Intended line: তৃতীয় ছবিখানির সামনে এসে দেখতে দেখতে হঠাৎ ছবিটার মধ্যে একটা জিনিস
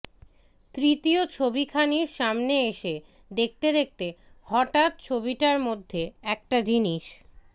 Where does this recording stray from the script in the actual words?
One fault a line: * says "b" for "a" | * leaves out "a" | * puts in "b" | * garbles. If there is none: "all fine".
all fine